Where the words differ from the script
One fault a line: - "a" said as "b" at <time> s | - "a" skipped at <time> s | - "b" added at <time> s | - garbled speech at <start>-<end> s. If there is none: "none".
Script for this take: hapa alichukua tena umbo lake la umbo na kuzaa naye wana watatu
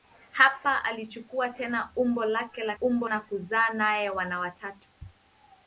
none